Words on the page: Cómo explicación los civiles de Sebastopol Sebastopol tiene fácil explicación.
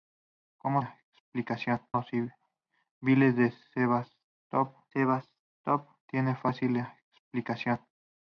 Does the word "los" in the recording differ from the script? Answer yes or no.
no